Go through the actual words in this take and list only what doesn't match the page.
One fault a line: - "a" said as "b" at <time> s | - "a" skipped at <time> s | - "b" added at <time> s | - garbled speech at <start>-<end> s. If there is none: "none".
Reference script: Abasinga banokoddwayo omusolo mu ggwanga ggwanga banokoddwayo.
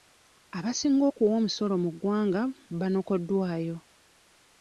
- "banokoddwayo" said as "okuwa" at 1.1 s
- "ggwanga" skipped at 2.4 s